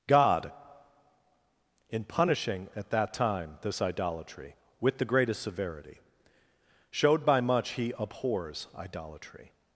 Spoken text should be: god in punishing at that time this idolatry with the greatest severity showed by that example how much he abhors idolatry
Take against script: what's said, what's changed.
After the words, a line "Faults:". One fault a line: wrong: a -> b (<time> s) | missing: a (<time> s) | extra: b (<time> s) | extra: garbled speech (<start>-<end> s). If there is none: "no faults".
god in punishing at that time this idolatry with the greatest severity showed by much he abhors idolatry
Faults:
missing: that example how (7.4 s)